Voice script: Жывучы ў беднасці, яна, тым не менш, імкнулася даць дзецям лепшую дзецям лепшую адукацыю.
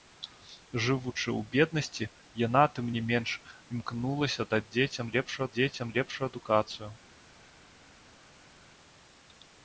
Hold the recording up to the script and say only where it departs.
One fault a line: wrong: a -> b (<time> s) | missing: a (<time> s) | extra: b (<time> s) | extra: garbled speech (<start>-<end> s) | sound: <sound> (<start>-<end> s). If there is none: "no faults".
no faults